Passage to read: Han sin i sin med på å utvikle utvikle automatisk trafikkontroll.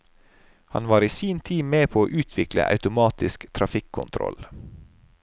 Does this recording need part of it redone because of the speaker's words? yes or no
yes